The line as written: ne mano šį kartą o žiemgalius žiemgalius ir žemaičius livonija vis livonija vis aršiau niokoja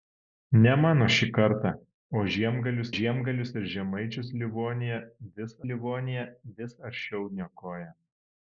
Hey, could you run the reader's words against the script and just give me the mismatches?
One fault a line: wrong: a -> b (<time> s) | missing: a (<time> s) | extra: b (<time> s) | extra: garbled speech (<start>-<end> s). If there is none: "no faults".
no faults